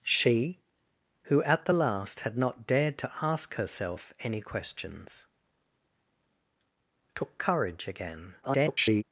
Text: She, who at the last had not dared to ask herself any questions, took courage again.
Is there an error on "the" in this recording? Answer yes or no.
no